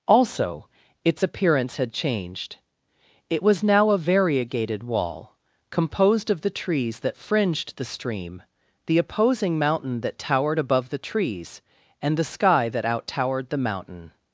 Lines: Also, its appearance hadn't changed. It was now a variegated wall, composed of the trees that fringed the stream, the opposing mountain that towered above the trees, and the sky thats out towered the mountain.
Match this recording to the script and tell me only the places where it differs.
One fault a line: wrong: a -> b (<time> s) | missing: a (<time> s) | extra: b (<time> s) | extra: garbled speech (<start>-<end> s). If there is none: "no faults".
wrong: hadn't -> had (1.8 s)
wrong: thats -> that (12.7 s)